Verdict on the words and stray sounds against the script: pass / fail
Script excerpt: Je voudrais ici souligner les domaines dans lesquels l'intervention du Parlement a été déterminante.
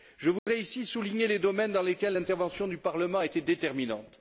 fail